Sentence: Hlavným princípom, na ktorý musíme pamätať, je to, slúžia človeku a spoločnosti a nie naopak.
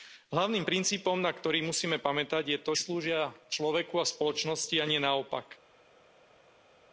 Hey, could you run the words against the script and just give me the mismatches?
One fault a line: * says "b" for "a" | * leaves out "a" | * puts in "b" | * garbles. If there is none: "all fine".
all fine